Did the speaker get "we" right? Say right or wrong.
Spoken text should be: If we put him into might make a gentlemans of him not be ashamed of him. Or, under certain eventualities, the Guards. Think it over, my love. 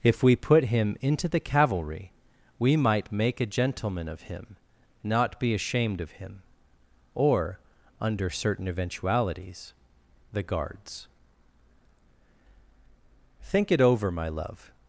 right